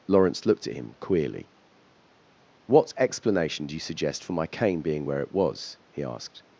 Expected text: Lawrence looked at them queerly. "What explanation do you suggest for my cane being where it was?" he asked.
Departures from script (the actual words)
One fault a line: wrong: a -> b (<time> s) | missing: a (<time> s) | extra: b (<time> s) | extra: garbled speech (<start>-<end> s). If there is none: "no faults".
wrong: them -> him (0.7 s)